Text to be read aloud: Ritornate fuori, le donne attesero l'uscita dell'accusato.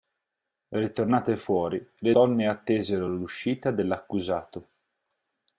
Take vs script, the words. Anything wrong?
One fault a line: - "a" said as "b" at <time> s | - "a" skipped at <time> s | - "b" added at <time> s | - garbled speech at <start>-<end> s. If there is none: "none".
none